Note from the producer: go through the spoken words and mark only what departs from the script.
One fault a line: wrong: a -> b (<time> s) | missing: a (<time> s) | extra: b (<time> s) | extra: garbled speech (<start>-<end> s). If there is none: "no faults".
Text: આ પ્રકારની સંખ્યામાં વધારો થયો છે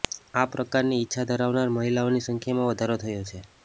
extra: ઇચ્છા ધરાવનાર મહિલાઓની (1.0 s)